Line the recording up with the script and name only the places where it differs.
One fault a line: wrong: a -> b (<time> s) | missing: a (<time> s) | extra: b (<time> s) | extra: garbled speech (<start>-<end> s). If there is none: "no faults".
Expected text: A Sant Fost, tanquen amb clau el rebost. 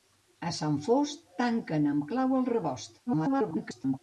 extra: garbled speech (3.1-4.0 s)